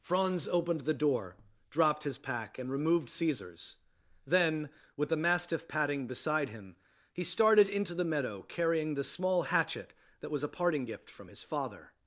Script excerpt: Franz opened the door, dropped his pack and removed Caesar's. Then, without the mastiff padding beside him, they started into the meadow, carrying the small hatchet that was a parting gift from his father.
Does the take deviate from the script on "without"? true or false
true